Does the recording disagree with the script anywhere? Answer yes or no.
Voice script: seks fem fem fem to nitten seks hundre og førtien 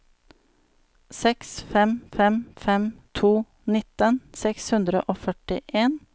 no